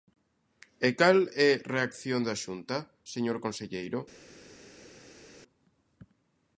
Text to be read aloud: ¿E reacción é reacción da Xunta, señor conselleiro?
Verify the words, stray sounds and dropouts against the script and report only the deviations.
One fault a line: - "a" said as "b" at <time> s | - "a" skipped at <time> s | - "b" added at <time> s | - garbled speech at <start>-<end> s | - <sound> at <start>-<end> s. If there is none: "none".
- "reacción" said as "cal" at 1.0 s